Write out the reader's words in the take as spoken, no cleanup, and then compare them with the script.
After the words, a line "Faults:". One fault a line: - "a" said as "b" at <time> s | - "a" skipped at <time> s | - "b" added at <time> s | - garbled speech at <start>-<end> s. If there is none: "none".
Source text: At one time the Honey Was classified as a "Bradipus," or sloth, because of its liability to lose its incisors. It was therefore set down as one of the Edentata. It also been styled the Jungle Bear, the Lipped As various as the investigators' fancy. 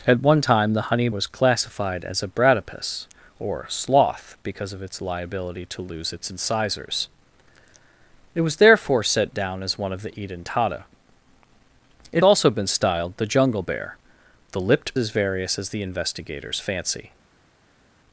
At one time the Honey Was classified as a "Bradipus," or sloth, because of its liability to lose its incisors. It was therefore set down as one of the Edentata. It also been styled the Jungle Bear, the Lipped As various as the investigators' fancy.
Faults:
none